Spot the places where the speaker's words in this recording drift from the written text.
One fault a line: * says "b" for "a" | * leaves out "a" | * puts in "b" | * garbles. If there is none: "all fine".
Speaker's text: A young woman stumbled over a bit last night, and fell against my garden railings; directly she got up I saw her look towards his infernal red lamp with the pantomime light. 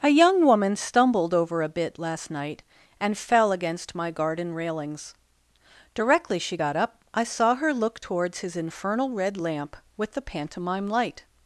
all fine